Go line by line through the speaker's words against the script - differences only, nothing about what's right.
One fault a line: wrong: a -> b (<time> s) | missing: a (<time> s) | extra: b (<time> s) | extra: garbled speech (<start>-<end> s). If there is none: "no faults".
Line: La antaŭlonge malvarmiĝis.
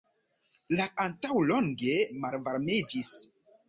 no faults